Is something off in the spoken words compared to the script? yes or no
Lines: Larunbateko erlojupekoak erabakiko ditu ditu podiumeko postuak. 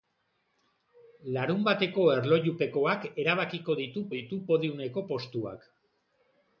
no